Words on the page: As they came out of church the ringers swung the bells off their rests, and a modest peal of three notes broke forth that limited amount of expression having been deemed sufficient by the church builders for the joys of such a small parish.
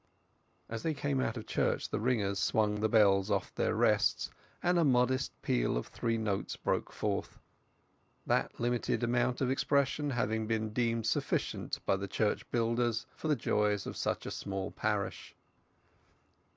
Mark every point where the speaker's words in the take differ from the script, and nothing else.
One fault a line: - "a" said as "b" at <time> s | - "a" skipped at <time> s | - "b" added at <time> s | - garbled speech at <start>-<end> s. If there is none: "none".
none